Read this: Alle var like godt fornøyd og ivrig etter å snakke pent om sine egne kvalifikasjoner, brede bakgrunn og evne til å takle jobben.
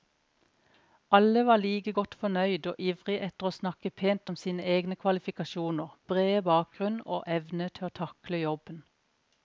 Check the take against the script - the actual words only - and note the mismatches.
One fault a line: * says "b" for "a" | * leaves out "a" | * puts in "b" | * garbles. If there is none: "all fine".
all fine